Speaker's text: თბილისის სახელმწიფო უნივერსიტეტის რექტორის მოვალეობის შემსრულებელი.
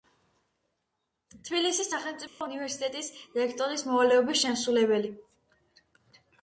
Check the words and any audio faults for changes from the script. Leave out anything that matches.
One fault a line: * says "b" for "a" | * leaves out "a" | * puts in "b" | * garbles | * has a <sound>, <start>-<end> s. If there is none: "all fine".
* has a dropout, 2.3-2.4 s